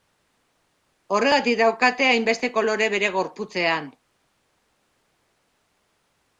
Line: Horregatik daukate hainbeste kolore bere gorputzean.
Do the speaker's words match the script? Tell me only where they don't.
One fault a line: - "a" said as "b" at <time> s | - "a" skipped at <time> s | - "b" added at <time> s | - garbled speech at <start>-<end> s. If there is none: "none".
none